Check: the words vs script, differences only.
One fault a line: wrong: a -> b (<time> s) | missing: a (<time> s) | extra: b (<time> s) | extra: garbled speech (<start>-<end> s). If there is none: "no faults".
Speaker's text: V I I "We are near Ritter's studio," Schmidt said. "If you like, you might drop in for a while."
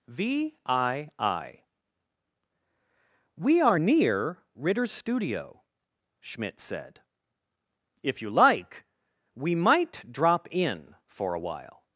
wrong: you -> we (9.3 s)